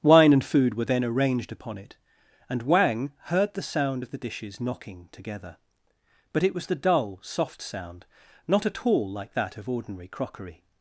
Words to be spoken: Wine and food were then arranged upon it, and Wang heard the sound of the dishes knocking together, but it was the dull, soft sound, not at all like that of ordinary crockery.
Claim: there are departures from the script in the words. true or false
false